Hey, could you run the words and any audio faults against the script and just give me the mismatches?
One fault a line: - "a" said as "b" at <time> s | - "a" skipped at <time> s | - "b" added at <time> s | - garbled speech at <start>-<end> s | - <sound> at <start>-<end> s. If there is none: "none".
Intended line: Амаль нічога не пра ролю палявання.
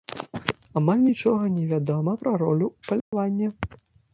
- "вядома" added at 1.7 s
- dropout at 3.0-3.1 s